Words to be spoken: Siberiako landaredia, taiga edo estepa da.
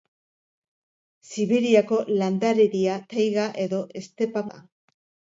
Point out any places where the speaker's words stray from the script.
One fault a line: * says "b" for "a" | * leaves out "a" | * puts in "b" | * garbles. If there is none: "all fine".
all fine